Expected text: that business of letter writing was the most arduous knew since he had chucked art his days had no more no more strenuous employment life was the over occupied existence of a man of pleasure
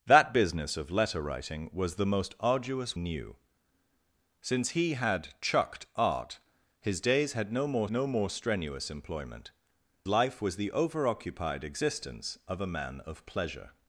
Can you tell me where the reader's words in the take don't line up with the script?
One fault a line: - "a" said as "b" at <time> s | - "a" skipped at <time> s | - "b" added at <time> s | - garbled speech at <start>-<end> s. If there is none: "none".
none